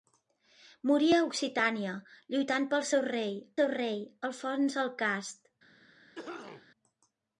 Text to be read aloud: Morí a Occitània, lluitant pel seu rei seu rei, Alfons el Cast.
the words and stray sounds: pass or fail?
fail